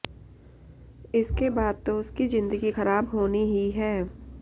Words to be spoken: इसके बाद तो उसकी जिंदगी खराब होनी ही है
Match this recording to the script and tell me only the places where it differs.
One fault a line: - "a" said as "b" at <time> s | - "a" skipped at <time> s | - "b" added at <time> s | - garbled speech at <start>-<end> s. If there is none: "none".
none